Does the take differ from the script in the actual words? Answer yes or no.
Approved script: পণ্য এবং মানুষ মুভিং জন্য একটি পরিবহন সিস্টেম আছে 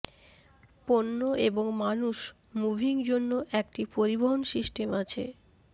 no